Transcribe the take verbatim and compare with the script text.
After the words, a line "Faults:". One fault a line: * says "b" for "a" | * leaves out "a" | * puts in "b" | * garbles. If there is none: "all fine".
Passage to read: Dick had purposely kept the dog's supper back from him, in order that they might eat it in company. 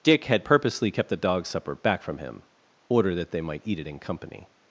Dick had purposely kept the dog's supper back from him, order that they might eat it in company.
Faults:
* leaves out "in"